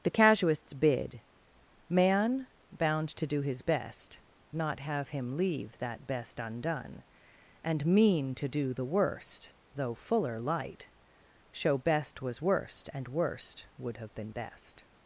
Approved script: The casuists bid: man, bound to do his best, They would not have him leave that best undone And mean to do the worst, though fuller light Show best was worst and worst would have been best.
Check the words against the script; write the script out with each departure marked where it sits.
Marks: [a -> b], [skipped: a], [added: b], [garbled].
The casuists bid: man, bound to do his best, [skipped: They would] not have him leave that best undone And mean to do the worst, though fuller light Show best was worst and worst would have been best.